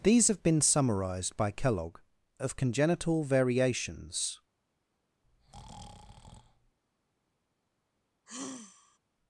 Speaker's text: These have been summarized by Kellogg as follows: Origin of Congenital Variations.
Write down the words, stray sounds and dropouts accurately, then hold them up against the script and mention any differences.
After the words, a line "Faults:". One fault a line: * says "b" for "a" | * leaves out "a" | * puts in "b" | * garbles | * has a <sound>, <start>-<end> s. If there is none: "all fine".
These have been summarized by Kellogg of Congenital Variations.
Faults:
* leaves out "as follows Origin"
* has a breath, 5.2-6.8 s
* has a sigh, 8.3-9.0 s